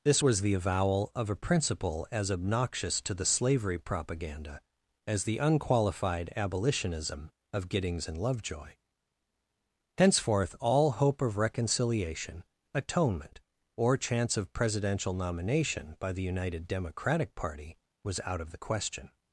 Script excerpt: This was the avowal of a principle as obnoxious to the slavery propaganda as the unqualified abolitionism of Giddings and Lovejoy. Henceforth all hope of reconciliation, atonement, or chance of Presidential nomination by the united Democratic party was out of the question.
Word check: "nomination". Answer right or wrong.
right